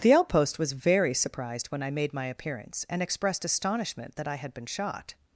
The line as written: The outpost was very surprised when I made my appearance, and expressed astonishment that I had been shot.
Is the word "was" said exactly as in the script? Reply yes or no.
yes